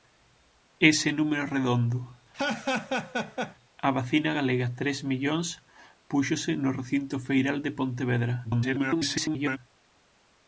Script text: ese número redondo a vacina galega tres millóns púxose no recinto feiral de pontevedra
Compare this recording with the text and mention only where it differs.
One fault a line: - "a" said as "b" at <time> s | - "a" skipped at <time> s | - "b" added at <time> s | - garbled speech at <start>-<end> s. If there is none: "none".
- garbled speech at 8.4-9.6 s